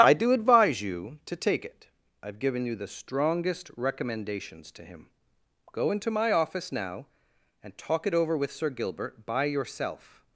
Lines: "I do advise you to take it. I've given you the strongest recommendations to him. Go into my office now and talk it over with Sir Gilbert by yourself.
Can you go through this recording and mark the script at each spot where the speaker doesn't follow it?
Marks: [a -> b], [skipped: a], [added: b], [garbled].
"I do advise you to take it. I've given you the strongest recommendations to him. Go into my office now and talk it over with Sir Gilbert by yourself.